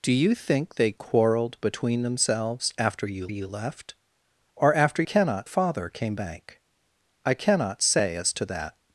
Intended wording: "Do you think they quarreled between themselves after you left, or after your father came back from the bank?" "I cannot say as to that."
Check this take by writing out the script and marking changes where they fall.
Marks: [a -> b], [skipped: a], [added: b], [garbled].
"Do you think they quarreled between themselves after you [added: you] left, or after [your -> cannot] father came [skipped: back from the] bank?" "I cannot say as to that."